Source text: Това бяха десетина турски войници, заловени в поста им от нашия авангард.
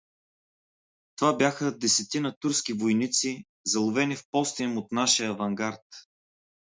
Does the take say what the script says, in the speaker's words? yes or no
yes